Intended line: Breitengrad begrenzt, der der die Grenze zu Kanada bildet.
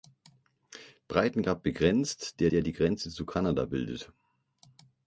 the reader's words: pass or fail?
pass